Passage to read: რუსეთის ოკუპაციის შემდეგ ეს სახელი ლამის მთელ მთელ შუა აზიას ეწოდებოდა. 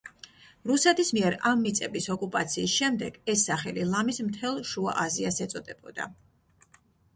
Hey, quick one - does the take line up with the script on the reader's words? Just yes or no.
no